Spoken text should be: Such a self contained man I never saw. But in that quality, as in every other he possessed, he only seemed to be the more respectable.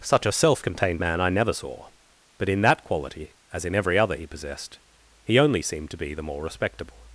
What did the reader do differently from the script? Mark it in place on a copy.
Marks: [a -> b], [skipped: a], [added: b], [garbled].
Such a self contained man I never saw. But in that quality, as in every other he possessed, he only seemed to be the more respectable.